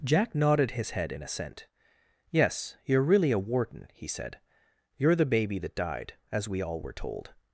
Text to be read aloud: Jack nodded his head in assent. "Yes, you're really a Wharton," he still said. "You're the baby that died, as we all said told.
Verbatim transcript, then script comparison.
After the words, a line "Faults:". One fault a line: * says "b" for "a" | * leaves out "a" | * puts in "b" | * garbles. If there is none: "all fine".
Jack nodded his head in assent. "Yes, you're really a Wharton," he said. "You're the baby that died, as we all were told.
Faults:
* leaves out "still"
* says "were" for "said"